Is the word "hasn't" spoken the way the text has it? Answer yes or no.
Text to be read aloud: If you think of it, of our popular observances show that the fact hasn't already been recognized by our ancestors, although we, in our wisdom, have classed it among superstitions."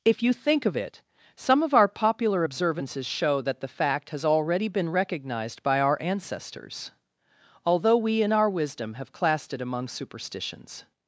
no